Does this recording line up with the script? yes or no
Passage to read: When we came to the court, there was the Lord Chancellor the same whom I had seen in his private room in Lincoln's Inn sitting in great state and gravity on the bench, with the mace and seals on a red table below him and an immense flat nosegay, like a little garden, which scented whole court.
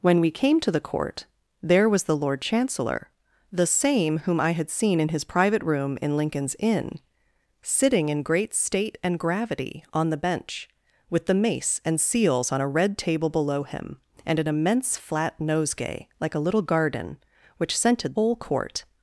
yes